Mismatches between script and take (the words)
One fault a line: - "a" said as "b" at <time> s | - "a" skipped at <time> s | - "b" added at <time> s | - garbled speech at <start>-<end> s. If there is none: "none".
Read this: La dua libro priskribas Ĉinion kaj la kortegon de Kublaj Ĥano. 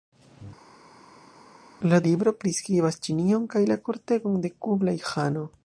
- "dua" skipped at 2.0 s